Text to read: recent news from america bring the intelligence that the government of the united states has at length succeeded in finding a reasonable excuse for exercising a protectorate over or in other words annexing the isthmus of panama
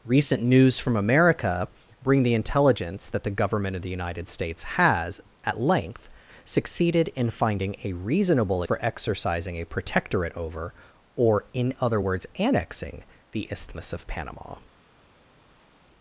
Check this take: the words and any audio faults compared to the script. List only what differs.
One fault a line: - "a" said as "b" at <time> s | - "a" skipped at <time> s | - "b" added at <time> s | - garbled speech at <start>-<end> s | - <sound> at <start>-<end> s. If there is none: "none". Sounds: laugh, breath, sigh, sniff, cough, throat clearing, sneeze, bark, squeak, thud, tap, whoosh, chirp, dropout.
- "excuse" skipped at 8.6 s